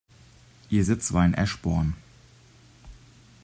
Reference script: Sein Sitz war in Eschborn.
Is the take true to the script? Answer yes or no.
no